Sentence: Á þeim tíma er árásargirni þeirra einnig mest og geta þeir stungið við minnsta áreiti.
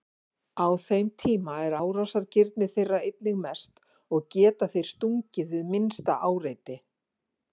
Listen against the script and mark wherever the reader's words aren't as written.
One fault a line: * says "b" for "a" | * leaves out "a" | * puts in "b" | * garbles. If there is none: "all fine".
all fine